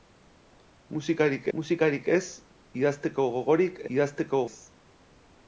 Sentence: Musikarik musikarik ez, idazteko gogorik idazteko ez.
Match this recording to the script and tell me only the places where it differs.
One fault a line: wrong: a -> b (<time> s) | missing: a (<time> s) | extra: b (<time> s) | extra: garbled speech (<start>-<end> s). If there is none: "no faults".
no faults